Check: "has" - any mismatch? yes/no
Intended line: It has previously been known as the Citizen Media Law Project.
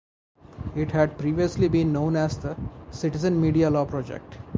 yes